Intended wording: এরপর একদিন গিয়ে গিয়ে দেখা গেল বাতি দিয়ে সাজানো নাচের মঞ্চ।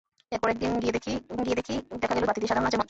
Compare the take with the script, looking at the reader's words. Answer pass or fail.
pass